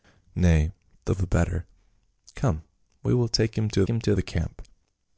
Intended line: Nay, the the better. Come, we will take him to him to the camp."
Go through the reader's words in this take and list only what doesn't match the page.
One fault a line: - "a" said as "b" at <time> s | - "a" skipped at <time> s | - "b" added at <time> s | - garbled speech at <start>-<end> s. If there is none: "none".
none